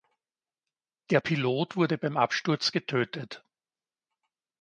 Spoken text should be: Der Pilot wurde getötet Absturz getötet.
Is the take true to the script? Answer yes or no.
no